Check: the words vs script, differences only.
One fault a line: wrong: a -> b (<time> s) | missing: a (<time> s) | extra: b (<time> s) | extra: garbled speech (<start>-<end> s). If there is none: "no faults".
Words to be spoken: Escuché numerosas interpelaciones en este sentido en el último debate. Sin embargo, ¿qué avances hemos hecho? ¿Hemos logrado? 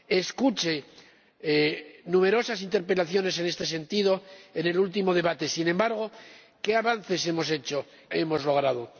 no faults